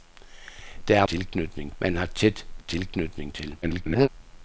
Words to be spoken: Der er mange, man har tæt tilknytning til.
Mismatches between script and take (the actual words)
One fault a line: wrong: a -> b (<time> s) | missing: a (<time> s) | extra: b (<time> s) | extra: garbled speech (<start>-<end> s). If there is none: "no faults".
wrong: mange -> tilknytning (1.1 s)
extra: garbled speech (3.6-4.1 s)